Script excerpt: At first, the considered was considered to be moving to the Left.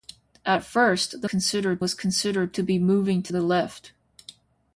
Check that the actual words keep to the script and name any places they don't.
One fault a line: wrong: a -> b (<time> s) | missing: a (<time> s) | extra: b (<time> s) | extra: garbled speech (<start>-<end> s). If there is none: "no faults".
no faults